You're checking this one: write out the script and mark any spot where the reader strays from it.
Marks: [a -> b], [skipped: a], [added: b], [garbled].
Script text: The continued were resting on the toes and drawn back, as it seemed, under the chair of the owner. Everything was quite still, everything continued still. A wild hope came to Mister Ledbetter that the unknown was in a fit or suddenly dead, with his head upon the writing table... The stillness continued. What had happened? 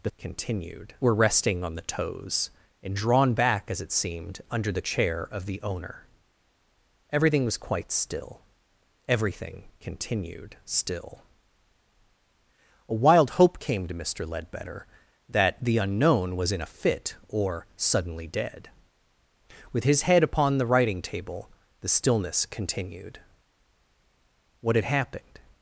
The continued were resting on the toes and drawn back, as it seemed, under the chair of the owner. Everything was quite still, everything continued still. A wild hope came to Mister Ledbetter that the unknown was in a fit or suddenly dead, with his head upon the writing table... The stillness continued. What had happened?